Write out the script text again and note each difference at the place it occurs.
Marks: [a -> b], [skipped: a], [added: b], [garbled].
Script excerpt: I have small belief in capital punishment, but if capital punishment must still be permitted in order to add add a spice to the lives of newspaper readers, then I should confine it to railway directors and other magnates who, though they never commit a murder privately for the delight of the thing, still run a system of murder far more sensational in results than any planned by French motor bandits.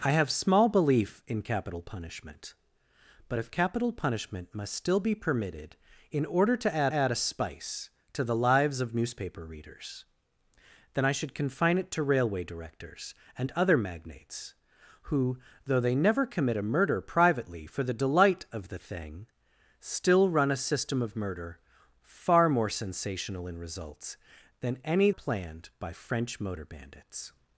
I have small belief in capital punishment, but if capital punishment must still be permitted in order to add add a spice to the lives of newspaper readers, then I should confine it to railway directors and other magnates who, though they never commit a murder privately for the delight of the thing, still run a system of murder far more sensational in results than any planned by French motor bandits.